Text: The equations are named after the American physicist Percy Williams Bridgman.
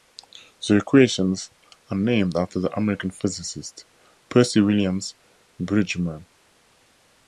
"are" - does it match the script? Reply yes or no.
yes